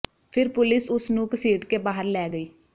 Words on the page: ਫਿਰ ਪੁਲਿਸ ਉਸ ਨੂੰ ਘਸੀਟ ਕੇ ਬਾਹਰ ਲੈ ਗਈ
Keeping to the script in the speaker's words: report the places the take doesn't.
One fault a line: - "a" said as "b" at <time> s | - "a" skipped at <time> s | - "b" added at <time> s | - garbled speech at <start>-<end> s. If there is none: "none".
none